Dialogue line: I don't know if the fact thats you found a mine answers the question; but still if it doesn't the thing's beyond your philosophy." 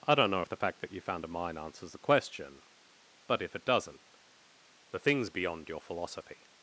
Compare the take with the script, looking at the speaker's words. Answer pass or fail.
fail